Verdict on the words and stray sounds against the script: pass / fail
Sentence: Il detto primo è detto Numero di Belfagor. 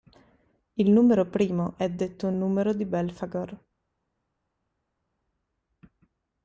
fail